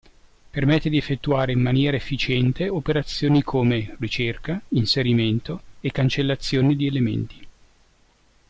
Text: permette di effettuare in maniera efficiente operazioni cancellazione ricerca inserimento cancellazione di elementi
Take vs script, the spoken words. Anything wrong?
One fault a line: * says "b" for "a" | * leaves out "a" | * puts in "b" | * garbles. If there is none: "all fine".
* says "come" for "cancellazione"
* puts in "e"